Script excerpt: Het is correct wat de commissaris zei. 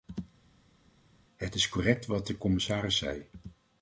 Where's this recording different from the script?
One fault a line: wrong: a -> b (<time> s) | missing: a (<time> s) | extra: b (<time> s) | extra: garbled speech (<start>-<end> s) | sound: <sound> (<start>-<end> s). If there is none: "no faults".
no faults